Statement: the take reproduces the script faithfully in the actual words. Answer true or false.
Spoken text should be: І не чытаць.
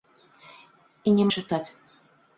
true